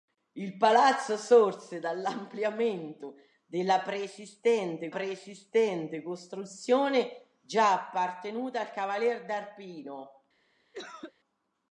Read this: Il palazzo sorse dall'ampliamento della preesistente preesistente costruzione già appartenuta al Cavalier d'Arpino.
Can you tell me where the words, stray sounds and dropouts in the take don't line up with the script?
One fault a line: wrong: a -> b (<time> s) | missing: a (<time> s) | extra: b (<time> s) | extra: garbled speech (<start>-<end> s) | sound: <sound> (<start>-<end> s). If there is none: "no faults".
sound: cough (10.7-11.1 s)